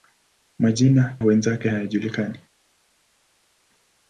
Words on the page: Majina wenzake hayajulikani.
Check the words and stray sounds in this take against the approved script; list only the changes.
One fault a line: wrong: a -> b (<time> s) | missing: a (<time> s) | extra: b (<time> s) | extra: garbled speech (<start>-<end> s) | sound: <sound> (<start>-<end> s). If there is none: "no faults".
no faults